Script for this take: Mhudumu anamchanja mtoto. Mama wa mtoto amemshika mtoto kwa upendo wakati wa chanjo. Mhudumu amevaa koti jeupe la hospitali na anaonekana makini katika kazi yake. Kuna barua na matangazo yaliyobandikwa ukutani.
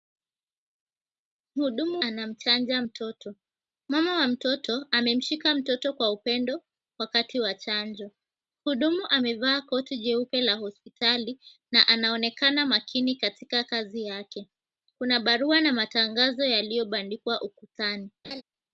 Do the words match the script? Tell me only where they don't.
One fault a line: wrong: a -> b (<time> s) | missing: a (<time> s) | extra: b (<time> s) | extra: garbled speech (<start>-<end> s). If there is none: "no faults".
no faults